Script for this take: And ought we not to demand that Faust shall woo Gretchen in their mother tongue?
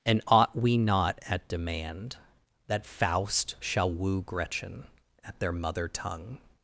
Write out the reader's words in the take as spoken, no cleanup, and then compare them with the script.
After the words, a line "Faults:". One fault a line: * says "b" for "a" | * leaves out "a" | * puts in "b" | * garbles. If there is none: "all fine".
And ought we not at demand that Faust shall woo Gretchen at their mother tongue?
Faults:
* says "at" for "to"
* says "at" for "in"